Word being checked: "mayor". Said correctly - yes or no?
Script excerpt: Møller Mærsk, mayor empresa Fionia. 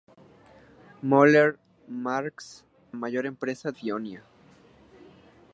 yes